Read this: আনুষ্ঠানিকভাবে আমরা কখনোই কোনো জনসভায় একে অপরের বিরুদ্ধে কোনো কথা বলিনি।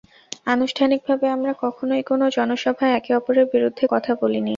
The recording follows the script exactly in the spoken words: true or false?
false